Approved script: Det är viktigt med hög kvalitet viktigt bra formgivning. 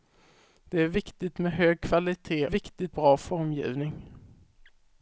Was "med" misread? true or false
false